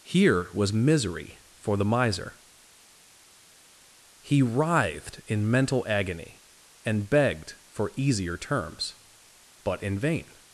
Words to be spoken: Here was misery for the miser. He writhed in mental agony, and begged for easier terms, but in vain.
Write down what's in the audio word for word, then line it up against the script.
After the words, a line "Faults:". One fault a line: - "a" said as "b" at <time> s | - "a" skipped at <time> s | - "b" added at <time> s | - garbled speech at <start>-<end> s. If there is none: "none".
Here was misery for the miser. He writhed in mental agony, and begged for easier terms, but in vain.
Faults:
none